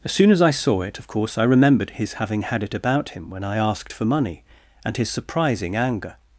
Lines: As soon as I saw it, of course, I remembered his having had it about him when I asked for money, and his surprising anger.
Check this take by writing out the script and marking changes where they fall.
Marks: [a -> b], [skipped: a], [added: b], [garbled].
As soon as I saw it, of course, I remembered his having had it about him when I asked for money, and his surprising anger.